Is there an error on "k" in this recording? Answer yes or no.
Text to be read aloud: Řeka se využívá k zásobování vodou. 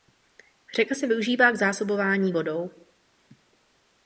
no